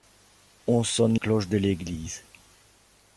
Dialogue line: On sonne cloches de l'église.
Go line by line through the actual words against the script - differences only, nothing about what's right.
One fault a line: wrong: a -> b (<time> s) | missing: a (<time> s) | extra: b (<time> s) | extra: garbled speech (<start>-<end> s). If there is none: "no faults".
no faults